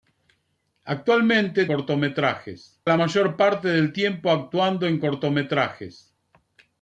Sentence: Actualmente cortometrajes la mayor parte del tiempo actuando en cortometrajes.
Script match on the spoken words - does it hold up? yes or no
yes